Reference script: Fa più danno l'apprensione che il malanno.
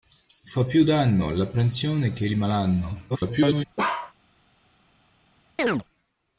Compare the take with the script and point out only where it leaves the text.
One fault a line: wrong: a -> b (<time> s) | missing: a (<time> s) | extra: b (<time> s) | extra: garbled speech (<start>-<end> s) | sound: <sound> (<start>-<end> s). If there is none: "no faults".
extra: garbled speech (3.1-3.7 s)
sound: bark (3.8-4.1 s)
sound: chirp (5.6-5.8 s)